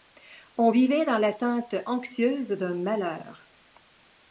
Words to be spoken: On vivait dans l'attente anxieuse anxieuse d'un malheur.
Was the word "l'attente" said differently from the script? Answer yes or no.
no